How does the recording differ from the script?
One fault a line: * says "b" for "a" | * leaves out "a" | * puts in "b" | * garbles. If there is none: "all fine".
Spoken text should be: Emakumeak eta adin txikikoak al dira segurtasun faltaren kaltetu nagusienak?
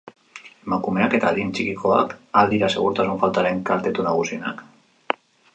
all fine